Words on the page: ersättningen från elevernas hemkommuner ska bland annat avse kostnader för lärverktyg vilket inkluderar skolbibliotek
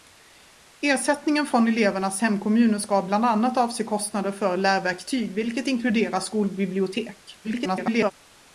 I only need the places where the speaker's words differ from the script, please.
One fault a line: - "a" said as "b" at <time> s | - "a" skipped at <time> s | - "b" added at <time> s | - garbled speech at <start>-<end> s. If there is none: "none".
- garbled speech at 7.4-8.1 s